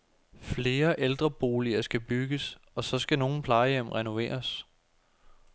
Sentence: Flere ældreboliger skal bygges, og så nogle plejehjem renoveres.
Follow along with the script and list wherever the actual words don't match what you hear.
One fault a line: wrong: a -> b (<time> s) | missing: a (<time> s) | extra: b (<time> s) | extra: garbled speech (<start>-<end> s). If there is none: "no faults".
extra: skal (3.0 s)